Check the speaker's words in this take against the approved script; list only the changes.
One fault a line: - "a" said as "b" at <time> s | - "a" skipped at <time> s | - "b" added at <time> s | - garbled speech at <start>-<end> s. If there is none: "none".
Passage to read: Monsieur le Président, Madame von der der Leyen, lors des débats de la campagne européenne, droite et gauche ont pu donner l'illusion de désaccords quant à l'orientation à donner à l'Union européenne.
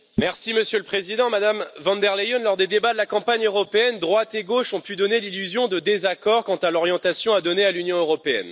- "der" skipped at 2.1 s